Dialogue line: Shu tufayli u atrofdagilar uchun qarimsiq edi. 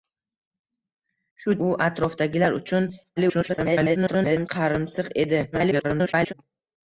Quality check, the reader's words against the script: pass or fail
fail